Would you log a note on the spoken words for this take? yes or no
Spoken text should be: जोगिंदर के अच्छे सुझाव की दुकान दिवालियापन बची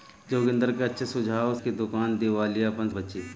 no